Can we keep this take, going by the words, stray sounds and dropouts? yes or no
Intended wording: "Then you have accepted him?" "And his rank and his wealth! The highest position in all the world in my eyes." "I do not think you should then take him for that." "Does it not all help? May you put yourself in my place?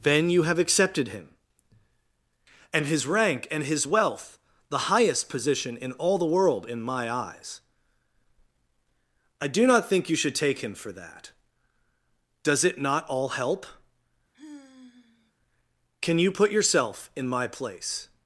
no